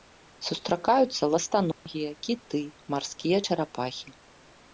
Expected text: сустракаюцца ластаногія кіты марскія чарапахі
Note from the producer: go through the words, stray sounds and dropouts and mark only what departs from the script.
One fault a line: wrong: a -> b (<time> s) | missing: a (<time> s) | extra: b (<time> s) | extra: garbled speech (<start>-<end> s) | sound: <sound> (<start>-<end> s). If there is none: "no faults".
sound: dropout (1.7-1.9 s)